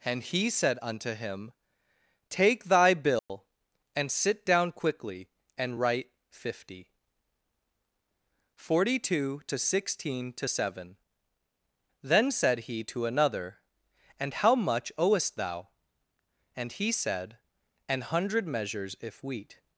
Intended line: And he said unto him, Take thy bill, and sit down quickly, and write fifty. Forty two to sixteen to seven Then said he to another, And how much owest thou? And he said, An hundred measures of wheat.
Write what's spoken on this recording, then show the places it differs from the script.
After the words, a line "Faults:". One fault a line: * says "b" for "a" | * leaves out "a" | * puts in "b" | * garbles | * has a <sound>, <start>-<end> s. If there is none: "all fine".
And he said unto him, Take thy bill, and sit down quickly, and write fifty. Forty two to sixteen to seven Then said he to another, And how much owest thou? And he said, An hundred measures if wheat.
Faults:
* has a dropout, 3.2-3.3 s
* says "if" for "of"